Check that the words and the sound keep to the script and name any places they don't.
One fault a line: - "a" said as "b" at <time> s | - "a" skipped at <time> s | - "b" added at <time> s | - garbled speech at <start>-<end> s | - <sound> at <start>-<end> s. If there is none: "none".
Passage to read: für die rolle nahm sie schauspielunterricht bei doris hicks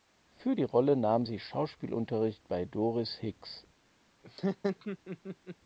- laugh at 4.2-5.6 s